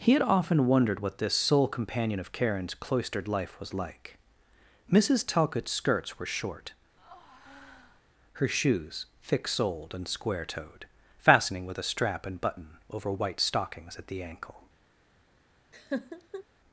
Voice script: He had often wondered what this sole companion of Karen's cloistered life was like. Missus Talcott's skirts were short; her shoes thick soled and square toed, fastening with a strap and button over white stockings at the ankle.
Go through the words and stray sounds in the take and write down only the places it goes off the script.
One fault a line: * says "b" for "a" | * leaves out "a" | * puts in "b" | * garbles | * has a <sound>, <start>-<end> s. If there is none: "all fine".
* has a breath, 7.0-8.0 s
* has a laugh, 15.7-16.4 s